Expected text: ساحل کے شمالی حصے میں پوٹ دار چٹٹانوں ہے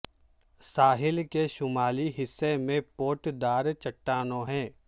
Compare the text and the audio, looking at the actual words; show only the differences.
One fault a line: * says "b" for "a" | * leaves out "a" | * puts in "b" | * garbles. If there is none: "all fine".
all fine